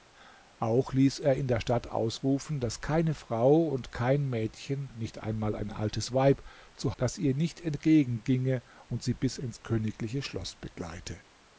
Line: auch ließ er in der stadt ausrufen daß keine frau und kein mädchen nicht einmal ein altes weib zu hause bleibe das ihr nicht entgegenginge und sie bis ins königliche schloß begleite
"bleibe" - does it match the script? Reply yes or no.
no